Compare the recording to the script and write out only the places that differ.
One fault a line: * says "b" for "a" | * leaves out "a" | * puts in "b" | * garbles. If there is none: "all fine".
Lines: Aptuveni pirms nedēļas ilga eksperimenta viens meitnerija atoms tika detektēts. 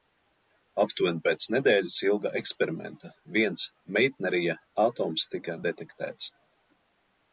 * says "pēc" for "pirms"